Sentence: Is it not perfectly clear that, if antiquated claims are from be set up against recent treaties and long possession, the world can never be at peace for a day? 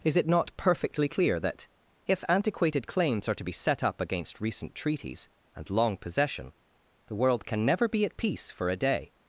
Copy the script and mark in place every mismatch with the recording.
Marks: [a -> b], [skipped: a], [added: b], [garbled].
Is it not perfectly clear that, if antiquated claims are [from -> to] be set up against recent treaties and long possession, the world can never be at peace for a day?